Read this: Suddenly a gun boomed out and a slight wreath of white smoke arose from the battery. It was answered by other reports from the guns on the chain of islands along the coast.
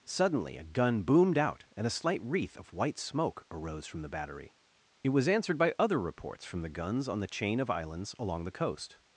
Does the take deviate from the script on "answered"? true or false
false